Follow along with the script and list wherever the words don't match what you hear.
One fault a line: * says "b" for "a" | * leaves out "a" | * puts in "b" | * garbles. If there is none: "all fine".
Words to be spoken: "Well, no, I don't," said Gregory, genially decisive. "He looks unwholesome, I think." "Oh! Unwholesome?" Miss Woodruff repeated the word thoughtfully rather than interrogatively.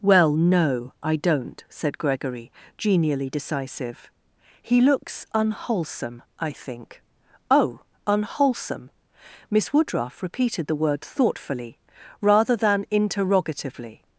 all fine